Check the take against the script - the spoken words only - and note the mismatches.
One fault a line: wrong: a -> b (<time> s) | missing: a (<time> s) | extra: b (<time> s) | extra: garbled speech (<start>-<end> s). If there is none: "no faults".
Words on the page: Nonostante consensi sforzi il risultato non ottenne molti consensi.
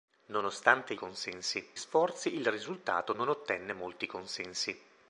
no faults